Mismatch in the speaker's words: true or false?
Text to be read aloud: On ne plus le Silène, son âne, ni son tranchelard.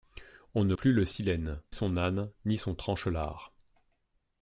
false